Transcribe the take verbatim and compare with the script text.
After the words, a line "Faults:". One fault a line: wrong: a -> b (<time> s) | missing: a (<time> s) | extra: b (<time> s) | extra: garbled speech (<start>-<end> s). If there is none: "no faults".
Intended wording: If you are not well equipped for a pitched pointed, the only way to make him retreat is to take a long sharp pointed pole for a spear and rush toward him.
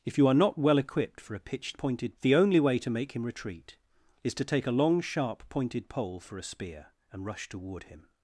If you are not well equipped for a pitched pointed, the only way to make him retreat is to take a long sharp pointed pole for a spear and rush toward him.
Faults:
no faults